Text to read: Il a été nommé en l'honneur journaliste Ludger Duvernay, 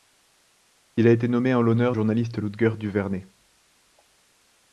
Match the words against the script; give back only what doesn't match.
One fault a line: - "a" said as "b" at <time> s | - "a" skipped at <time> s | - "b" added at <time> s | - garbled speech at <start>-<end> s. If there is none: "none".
none